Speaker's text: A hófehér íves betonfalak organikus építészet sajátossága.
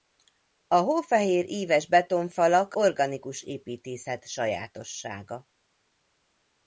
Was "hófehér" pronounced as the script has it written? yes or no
yes